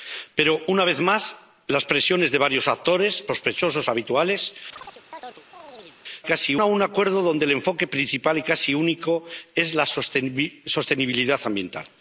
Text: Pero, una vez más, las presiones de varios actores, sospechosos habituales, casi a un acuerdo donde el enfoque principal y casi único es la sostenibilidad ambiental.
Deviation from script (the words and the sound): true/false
true